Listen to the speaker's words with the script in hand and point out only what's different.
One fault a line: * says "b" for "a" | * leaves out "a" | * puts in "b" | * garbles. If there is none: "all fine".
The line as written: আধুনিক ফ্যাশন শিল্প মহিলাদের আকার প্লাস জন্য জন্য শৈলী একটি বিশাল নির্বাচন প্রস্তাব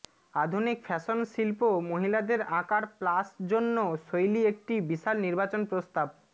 * leaves out "জন্য"